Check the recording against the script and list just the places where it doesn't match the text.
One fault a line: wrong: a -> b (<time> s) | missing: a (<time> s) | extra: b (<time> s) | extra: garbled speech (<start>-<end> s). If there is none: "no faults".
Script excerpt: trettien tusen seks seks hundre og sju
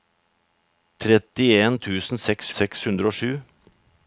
no faults